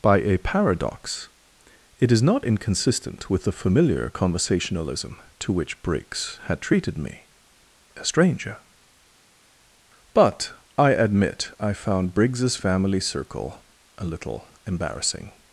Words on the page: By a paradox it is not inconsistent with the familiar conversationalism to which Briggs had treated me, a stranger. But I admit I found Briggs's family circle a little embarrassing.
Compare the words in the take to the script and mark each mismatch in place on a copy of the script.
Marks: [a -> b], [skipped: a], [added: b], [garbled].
By a paradox it is not inconsistent with the familiar conversationalism to which Briggs had treated me, a stranger. But I admit I found Briggs's family circle a little embarrassing.